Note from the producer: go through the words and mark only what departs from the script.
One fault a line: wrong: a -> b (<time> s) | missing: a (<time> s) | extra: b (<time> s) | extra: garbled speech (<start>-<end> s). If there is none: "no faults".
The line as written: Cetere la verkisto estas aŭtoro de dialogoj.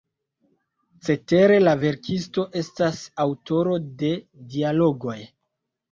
no faults